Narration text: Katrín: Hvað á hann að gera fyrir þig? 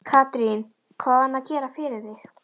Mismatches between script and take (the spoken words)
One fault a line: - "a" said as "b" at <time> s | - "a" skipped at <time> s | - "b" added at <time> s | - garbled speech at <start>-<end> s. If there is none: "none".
none